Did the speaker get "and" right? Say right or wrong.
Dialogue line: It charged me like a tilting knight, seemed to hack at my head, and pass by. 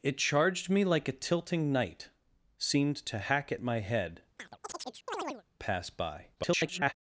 wrong